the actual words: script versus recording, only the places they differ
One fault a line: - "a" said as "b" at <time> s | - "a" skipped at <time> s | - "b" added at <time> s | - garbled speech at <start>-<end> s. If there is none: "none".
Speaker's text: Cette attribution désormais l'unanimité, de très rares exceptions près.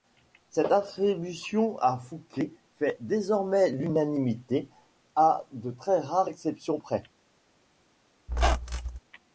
- "à Fouquet fait" added at 1.8 s
- "à" added at 5.2 s